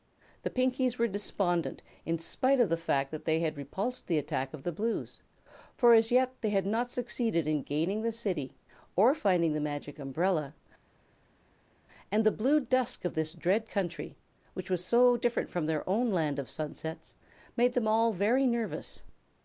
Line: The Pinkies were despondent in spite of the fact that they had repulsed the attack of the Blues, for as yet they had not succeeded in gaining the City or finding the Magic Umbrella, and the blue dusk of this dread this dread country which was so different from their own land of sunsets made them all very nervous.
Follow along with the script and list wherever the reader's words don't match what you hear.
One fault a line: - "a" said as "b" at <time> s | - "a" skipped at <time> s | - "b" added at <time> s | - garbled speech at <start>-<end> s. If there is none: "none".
- "this dread" skipped at 13.7 s